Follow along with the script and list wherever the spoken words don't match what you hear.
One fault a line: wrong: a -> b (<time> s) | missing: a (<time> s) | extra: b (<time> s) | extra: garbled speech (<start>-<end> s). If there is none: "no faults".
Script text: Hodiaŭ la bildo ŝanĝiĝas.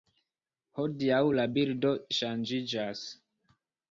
no faults